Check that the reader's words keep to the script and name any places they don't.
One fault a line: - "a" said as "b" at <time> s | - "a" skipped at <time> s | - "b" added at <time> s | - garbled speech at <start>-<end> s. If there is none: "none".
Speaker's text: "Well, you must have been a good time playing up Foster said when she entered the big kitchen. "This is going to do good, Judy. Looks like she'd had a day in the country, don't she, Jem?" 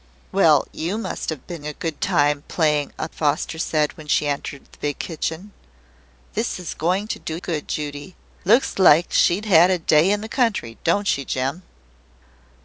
none